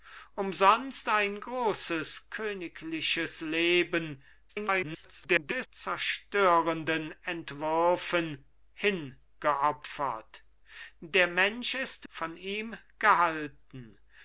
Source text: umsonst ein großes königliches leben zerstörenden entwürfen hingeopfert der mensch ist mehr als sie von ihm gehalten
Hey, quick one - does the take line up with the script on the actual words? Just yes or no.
no